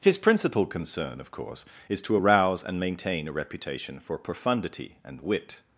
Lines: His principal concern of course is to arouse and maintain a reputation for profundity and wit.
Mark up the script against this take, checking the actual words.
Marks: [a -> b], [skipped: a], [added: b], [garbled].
His principal concern of course is to arouse and maintain a reputation for profundity and wit.